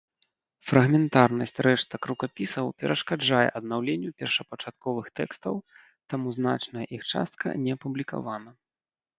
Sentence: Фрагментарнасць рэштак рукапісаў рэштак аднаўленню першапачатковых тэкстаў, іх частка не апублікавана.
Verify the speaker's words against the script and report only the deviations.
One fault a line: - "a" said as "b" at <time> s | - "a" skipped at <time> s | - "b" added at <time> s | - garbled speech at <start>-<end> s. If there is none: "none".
- "рэштак" said as "перашкаджае" at 2.8 s
- "таму значная" added at 6.1 s